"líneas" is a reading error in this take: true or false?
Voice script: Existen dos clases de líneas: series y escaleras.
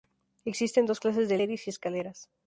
true